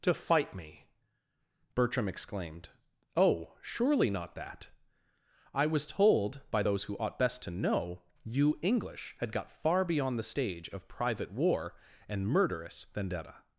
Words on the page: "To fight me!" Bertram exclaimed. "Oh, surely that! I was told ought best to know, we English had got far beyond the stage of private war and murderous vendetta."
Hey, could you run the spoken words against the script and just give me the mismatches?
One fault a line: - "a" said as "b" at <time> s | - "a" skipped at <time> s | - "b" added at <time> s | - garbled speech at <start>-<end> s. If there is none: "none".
- "not" added at 4.1 s
- "by those who" added at 6.5 s
- "we" said as "you" at 8.2 s